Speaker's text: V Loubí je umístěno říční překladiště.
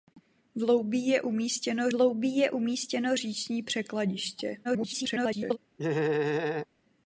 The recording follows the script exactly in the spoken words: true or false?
false